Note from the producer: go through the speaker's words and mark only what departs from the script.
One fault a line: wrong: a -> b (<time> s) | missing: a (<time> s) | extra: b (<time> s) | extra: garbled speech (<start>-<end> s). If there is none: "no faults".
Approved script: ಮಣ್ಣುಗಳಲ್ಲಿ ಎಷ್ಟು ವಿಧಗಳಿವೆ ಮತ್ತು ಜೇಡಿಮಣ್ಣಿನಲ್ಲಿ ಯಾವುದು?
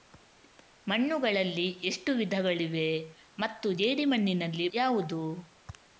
no faults